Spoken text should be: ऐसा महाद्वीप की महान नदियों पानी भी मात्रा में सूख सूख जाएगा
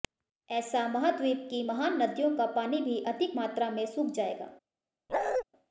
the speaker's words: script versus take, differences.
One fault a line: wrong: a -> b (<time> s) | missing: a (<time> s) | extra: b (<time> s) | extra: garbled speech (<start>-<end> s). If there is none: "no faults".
extra: का (2.4 s)
extra: अधिक (3.0 s)
missing: सूख (4.1 s)